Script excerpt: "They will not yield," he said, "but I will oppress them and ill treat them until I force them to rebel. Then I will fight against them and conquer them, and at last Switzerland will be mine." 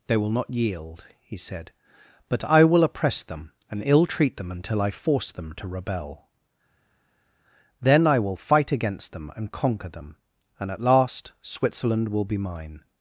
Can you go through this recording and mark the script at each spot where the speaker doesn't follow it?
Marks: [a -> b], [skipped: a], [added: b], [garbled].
"They will not yield," he said, "but I will oppress them and ill treat them until I force them to rebel. Then I will fight against them and conquer them, and at last Switzerland will be mine."